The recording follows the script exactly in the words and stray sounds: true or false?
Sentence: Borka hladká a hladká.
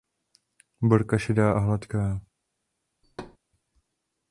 false